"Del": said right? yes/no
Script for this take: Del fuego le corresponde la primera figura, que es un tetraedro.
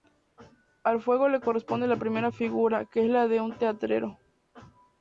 no